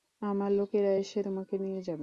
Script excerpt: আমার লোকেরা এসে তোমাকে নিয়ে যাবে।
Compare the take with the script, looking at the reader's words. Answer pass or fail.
pass